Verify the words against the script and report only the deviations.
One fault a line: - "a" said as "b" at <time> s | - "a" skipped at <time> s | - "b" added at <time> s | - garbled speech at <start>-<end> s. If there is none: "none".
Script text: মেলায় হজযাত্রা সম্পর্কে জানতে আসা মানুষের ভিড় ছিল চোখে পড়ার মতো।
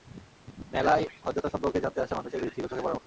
none